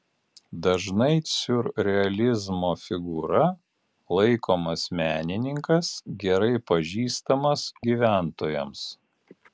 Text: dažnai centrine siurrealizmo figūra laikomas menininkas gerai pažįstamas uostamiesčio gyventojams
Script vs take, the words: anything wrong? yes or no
yes